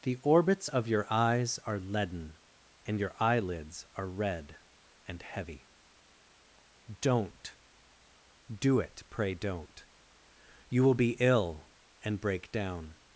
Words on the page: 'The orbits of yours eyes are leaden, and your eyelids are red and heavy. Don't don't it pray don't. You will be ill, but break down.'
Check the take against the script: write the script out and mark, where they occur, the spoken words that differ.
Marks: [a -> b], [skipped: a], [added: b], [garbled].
'The orbits of [yours -> your] eyes are leaden, and your eyelids are red and heavy. Don't [don't -> do] it pray don't. You will be ill, [but -> and] break down.'